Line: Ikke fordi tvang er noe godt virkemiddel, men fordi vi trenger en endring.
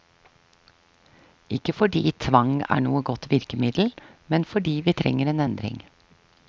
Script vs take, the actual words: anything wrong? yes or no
no